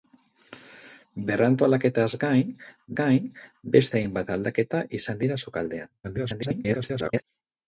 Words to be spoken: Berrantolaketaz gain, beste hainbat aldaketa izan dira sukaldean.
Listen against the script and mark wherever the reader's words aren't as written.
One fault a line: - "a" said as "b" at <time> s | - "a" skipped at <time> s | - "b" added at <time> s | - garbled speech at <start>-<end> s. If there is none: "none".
- "gain" added at 3.0 s
- garbled speech at 6.0-7.2 s